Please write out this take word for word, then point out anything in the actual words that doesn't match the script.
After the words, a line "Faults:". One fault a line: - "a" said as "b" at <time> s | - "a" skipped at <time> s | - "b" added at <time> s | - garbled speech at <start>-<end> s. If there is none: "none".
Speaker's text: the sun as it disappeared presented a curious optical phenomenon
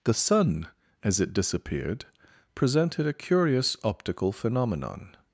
the sun as it disappeared presented a curious optical phenomenon
Faults:
none